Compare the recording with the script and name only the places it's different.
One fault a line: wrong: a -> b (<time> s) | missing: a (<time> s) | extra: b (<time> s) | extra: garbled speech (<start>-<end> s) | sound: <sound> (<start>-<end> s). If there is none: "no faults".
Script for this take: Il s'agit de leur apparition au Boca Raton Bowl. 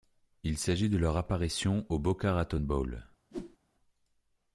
sound: whoosh (3.3-3.6 s)